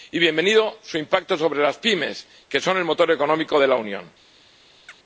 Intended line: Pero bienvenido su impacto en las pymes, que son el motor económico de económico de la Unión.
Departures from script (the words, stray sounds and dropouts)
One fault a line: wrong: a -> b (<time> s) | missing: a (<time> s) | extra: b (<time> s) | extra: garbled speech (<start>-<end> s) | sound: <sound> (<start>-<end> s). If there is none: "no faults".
wrong: Pero -> Y (0.1 s)
wrong: en -> sobre (1.4 s)
missing: económico de (3.7 s)
sound: chirp (4.9-5.0 s)